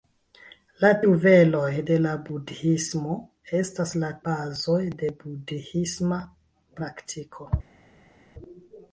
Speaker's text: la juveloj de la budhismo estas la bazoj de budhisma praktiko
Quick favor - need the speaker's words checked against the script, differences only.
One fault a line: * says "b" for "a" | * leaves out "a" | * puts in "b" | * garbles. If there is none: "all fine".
all fine